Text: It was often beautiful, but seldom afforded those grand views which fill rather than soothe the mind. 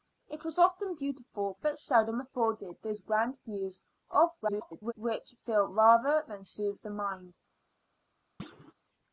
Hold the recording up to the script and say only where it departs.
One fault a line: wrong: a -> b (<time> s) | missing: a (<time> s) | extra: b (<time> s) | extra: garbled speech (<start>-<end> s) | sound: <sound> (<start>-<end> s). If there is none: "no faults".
extra: garbled speech (4.4-4.9 s)
sound: thud (8.4-8.7 s)